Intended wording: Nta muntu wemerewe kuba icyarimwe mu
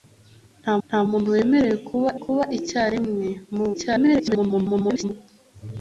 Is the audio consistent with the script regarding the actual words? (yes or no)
no